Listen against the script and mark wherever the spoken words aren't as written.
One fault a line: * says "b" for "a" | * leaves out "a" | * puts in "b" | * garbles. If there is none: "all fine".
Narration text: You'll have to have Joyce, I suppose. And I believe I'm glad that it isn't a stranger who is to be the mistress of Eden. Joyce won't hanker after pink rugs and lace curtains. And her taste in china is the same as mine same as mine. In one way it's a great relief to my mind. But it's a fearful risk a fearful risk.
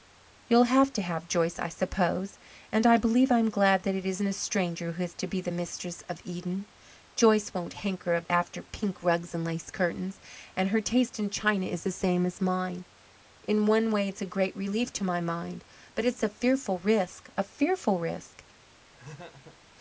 * leaves out "same as mine"